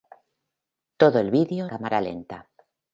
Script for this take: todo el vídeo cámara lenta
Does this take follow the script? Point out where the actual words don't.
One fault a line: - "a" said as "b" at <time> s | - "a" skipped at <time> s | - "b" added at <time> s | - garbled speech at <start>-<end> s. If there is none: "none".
none